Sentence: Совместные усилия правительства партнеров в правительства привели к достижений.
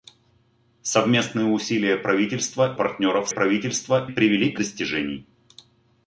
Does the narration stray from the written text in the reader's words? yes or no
no